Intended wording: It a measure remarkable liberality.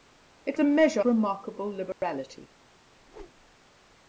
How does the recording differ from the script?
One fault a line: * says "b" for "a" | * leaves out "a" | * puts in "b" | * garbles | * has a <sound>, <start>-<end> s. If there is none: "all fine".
* has a dropout, 1.9-2.0 s
* has a whoosh, 3.0-3.6 s